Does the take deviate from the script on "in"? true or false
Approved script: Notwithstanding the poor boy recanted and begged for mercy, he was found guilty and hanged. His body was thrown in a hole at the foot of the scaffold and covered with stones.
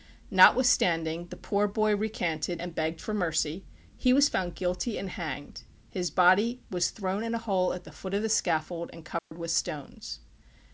false